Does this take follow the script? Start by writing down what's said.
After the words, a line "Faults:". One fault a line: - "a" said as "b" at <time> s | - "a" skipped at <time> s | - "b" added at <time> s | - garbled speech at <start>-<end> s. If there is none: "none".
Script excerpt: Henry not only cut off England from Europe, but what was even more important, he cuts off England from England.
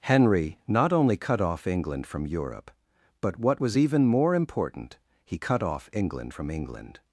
Henry not only cut off England from Europe, but what was even more important, he cut off England from England.
Faults:
- "cuts" said as "cut" at 5.3 s